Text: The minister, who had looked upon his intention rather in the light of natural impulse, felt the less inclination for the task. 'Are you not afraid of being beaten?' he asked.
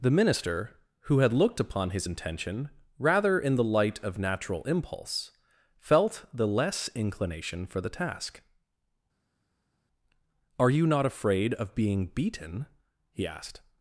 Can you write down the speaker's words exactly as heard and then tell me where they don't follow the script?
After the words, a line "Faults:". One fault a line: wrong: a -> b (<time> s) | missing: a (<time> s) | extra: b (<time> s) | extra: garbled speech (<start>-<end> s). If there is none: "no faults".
The minister, who had looked upon his intention rather in the light of natural impulse, felt the less inclination for the task. 'Are you not afraid of being beaten?' he asked.
Faults:
no faults